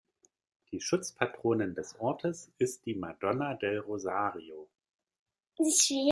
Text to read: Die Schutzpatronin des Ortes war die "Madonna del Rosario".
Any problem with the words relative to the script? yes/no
yes